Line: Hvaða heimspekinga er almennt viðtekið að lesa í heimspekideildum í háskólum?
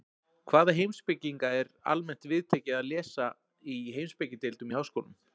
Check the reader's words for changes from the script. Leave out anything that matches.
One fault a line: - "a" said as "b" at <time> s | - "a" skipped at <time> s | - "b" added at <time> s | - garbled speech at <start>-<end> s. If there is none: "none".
none